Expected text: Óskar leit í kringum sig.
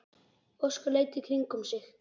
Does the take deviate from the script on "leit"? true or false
false